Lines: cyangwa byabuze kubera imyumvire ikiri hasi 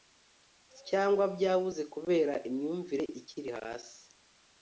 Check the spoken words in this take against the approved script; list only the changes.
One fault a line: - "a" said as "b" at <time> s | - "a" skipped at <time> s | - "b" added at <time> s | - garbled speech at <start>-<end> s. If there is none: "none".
none